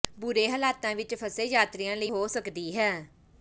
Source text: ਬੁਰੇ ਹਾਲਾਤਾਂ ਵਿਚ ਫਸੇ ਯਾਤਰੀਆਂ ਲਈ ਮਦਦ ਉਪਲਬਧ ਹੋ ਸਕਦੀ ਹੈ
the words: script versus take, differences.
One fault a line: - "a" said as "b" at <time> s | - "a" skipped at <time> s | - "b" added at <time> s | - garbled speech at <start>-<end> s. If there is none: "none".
- "ਮਦਦ ਉਪਲਬਧ" skipped at 2.1 s